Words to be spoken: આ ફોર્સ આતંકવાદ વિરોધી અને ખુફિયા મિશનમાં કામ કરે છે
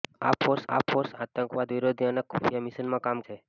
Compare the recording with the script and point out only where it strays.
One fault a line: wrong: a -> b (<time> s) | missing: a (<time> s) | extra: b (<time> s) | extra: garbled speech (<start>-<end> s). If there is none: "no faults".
extra: આ ફોર્સ (0.7 s)
missing: કરે (3.3 s)